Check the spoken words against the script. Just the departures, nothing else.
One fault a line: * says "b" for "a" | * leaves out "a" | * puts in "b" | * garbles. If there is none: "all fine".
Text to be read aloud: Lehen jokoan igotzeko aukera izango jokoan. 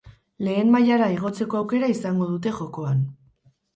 * says "mailara" for "jokoan"
* puts in "dute"